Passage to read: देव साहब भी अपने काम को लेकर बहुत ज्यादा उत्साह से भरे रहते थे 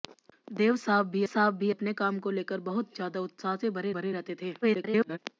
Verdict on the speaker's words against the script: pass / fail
fail